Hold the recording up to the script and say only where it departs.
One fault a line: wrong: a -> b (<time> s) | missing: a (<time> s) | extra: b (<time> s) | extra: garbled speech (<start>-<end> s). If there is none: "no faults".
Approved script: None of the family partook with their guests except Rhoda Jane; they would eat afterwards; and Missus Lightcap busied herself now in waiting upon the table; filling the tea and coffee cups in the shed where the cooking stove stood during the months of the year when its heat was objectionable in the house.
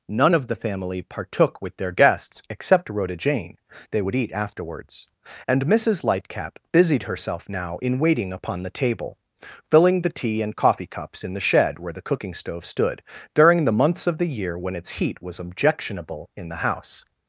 no faults